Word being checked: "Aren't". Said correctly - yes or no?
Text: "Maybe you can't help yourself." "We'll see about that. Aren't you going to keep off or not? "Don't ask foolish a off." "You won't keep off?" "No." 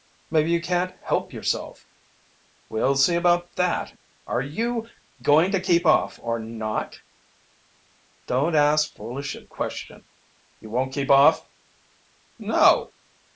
no